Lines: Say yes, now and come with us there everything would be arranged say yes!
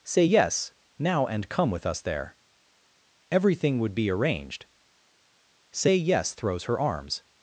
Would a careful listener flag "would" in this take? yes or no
no